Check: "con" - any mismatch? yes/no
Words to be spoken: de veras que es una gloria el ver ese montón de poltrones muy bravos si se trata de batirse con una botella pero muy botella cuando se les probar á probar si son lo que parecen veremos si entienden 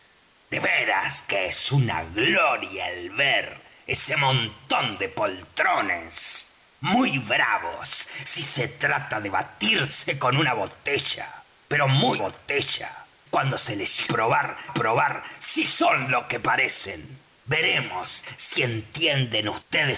no